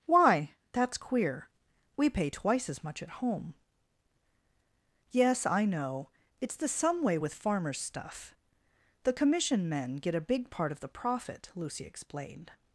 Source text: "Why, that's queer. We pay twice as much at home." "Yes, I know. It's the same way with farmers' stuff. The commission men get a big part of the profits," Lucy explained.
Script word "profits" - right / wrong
wrong